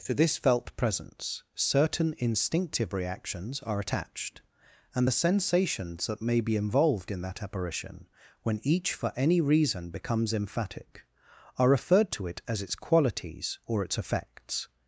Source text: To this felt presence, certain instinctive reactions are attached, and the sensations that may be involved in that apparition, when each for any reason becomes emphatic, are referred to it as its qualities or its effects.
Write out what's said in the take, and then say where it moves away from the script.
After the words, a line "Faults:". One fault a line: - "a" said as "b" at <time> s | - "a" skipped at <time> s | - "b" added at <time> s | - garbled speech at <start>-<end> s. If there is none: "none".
To this felt presence, certain instinctive reactions are attached, and the sensations that may be involved in that apparition, when each for any reason becomes emphatic, are referred to it as its qualities or its effects.
Faults:
none